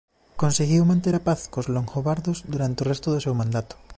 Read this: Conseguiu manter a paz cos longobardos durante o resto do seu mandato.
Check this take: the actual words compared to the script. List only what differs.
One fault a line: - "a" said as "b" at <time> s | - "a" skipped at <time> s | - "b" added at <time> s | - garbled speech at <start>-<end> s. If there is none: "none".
none